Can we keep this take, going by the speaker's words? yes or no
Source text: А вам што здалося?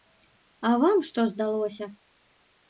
yes